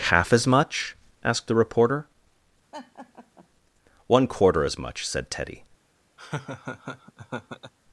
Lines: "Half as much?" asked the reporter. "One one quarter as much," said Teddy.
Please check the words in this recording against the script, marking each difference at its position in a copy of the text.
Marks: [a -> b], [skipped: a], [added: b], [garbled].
"Half as much?" asked the reporter. "One [skipped: one] quarter as much," said Teddy.